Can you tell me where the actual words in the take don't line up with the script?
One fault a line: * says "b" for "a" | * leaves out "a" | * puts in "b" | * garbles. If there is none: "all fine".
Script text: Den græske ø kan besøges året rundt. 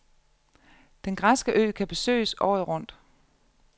all fine